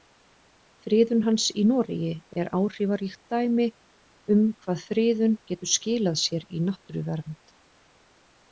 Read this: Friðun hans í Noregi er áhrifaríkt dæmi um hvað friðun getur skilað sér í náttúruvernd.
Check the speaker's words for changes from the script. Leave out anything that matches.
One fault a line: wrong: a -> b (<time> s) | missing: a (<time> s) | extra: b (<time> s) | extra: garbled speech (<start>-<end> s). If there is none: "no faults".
no faults